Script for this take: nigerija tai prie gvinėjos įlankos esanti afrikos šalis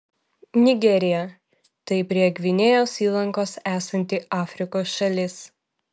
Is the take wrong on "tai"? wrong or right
right